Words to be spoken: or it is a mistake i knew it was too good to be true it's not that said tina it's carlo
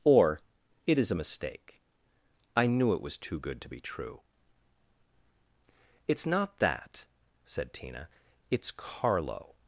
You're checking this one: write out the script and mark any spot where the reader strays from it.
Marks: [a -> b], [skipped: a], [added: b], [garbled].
or it is a mistake i knew it was too good to be true it's not that said tina it's carlo